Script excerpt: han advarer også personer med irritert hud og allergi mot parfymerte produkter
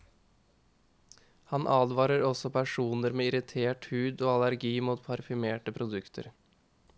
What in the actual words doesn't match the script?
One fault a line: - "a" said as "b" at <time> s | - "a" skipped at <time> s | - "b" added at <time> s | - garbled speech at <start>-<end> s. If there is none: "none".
none